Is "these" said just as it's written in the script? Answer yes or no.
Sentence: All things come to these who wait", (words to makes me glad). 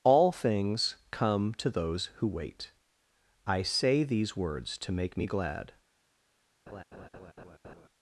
no